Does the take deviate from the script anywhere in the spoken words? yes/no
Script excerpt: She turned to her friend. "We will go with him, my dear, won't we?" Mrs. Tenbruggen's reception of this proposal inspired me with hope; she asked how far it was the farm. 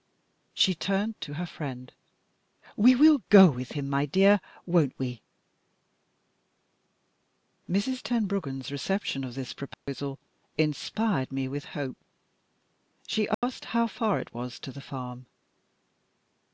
yes